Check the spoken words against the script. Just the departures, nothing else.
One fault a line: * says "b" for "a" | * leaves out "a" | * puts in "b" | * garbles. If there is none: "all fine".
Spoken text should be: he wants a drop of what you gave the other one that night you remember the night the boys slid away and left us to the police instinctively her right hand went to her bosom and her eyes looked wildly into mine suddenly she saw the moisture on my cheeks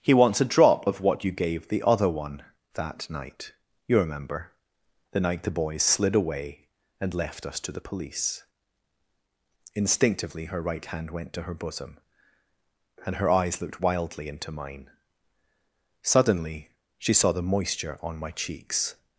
all fine